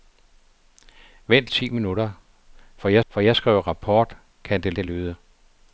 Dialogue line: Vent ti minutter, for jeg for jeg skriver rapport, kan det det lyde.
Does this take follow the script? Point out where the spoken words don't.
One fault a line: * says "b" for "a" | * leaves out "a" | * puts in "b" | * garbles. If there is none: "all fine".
all fine